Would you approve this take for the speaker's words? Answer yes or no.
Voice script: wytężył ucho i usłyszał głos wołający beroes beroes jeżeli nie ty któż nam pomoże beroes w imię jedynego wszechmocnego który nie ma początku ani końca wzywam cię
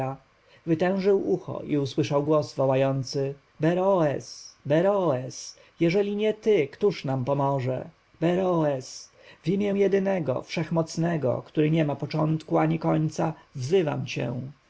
yes